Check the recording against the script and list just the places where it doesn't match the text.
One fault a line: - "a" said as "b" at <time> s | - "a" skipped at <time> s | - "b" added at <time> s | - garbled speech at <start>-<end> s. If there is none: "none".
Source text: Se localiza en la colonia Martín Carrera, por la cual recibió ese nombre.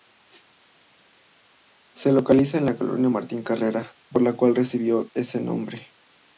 none